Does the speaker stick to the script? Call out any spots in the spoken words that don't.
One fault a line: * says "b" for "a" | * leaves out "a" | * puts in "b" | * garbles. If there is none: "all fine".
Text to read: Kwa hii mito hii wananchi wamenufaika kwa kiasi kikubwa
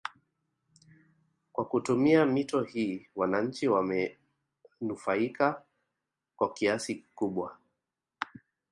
* says "kutumia" for "hii"